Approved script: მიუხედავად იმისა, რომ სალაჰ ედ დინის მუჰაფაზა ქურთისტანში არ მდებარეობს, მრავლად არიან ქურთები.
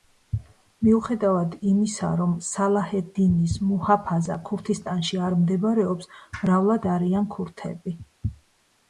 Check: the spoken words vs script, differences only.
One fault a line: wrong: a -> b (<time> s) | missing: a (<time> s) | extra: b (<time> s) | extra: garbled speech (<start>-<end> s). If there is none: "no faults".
no faults